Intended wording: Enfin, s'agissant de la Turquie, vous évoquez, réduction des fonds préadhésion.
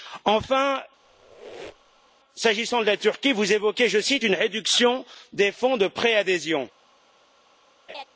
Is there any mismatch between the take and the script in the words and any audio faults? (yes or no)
yes